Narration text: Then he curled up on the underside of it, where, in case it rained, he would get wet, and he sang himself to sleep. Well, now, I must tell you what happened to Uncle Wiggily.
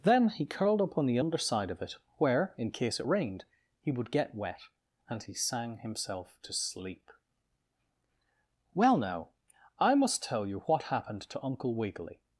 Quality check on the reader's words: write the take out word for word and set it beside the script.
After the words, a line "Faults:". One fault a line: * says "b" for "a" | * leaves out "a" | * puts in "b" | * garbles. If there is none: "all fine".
Then he curled up on the underside of it, where, in case it rained, he would get wet, and he sang himself to sleep. Well, now, I must tell you what happened to Uncle Wiggily.
Faults:
all fine